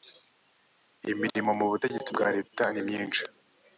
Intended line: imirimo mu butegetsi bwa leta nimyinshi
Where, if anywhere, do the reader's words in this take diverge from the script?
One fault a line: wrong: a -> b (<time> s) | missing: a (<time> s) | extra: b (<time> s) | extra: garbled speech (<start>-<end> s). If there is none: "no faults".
no faults